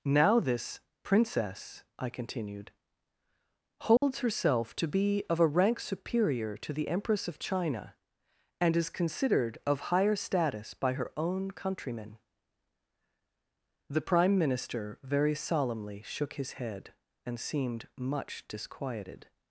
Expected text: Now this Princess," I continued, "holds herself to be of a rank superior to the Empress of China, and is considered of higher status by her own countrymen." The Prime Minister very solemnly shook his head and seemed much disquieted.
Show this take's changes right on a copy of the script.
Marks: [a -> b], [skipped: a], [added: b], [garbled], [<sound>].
Now this Princess," I continued, "holds [dropout] herself to be of a rank superior to the Empress of China, and is considered of higher status by her own countrymen." The Prime Minister very solemnly shook his head and seemed much disquieted.